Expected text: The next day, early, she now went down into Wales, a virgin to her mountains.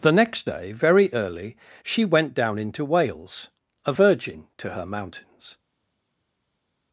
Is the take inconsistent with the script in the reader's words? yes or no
yes